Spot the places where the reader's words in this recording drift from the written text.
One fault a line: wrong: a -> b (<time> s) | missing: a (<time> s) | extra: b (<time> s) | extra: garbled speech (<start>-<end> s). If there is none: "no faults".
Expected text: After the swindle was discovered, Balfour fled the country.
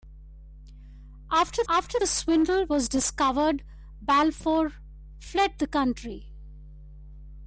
extra: after (1.7 s)